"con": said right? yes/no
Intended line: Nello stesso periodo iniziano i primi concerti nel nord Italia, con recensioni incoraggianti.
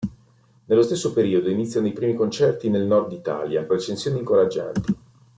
no